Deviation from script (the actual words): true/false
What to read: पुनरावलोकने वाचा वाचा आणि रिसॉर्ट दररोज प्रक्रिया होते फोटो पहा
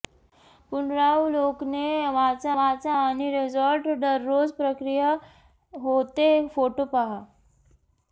false